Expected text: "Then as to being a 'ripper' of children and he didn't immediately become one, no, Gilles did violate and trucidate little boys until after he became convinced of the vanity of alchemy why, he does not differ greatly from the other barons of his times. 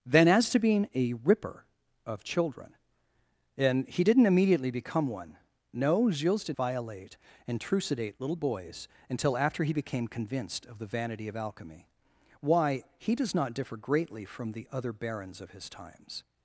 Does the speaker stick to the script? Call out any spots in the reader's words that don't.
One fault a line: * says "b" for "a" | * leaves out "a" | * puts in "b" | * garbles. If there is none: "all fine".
all fine